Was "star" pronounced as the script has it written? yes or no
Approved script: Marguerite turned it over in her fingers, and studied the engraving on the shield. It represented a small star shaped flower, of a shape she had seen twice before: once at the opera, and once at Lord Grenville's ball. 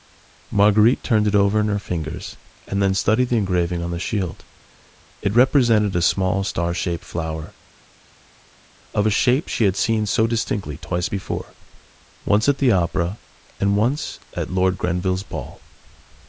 yes